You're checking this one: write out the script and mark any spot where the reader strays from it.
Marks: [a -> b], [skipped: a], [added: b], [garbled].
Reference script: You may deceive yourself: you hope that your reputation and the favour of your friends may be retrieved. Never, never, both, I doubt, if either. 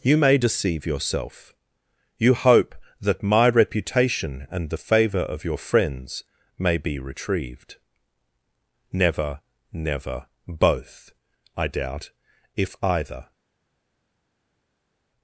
You may deceive yourself: you hope that [your -> my] reputation and the favour of your friends may be retrieved. Never, never, both, I doubt, if either.